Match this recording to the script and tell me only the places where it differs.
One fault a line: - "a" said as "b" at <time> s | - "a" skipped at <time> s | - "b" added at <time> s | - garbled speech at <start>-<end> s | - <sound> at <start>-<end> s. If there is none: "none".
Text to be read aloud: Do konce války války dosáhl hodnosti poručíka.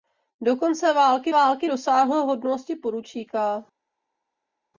none